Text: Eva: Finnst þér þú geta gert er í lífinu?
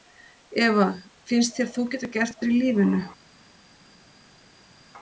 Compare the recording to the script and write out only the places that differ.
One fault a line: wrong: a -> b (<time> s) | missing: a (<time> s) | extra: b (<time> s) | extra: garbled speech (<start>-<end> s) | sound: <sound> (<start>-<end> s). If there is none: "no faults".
no faults